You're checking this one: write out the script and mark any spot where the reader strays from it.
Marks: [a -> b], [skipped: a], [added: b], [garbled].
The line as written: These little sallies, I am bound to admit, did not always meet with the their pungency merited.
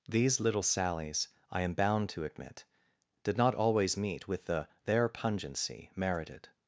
These little sallies, I am bound to admit, did not always meet with the their pungency merited.